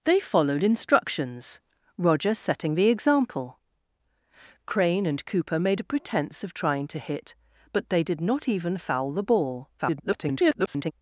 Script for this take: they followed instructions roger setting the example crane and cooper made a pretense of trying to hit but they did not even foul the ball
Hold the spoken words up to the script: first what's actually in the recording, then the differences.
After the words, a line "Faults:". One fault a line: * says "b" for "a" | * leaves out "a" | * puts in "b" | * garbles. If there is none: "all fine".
they followed instructions roger setting the example crane and cooper made a pretense of trying to hit but they did not even foul the ball [garbled]
Faults:
* garbles